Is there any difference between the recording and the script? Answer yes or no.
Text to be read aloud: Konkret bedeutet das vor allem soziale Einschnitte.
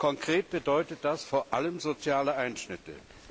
no